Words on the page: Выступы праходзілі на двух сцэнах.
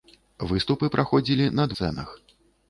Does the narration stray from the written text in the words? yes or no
yes